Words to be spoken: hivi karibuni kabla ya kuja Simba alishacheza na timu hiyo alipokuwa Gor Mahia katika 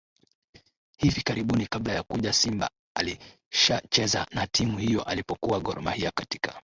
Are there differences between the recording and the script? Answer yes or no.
no